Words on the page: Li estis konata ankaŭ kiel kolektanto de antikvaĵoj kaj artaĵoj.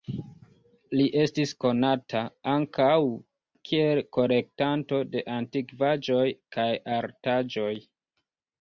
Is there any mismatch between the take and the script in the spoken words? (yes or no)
no